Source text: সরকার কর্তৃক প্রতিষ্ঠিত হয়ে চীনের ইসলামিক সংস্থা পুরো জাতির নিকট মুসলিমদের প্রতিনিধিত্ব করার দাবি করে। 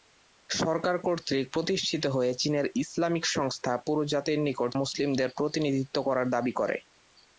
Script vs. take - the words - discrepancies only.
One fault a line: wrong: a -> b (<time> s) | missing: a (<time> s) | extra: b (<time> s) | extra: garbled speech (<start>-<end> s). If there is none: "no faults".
no faults